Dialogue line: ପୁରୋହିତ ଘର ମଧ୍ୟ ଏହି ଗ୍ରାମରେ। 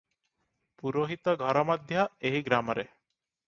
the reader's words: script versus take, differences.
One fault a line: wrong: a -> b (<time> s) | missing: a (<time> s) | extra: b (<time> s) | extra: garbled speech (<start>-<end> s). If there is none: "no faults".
no faults